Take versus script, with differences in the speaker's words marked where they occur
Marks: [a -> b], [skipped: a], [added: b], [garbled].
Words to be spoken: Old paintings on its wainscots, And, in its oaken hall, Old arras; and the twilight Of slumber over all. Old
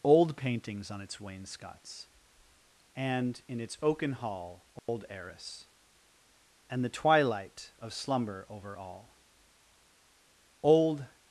Old paintings on its wainscots, And, in its oaken hall, Old arras; and the twilight Of slumber over all. Old